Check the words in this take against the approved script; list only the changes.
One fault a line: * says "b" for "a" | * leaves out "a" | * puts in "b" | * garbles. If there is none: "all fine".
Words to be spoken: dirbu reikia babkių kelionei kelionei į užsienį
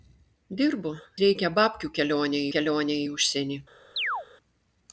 all fine